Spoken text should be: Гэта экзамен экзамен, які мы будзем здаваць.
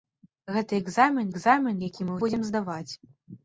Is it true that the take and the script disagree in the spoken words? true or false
false